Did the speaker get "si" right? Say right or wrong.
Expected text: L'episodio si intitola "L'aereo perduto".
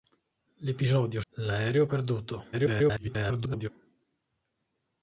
wrong